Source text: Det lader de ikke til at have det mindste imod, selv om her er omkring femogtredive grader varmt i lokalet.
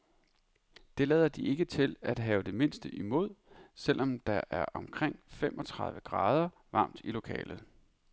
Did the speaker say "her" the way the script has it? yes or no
no